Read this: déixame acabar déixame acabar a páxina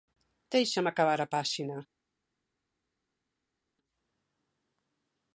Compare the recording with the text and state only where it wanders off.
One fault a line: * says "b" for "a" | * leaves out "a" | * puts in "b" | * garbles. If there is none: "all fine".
* leaves out "déixame acabar"